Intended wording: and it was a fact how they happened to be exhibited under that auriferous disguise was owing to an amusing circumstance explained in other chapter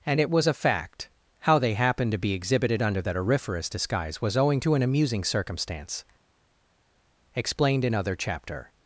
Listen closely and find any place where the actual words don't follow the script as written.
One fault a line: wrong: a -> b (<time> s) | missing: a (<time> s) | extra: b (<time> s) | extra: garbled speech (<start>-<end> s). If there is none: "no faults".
no faults